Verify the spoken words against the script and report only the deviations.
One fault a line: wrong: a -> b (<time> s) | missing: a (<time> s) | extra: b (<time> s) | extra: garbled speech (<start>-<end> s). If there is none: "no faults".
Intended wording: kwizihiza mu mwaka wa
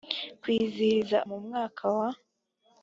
no faults